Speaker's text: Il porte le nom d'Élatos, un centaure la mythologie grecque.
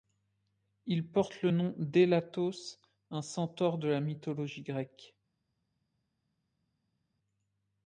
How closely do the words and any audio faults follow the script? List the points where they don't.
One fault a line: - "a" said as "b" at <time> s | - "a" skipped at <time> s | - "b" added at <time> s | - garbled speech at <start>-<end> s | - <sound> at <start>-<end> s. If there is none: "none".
- "de" added at 3.8 s